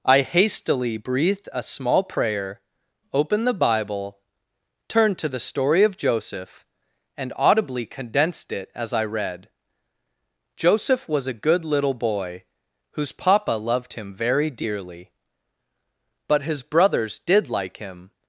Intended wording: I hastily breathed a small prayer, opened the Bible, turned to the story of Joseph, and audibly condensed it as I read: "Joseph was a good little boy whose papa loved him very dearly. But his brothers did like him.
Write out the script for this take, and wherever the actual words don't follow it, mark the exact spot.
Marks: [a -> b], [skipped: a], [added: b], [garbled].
I hastily breathed a small prayer, opened the Bible, turned to the story of Joseph, and audibly condensed it as I read: "Joseph was a good little boy whose papa loved him very dearly. But his brothers did like him.